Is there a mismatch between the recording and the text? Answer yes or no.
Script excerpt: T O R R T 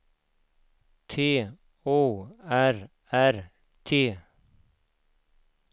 no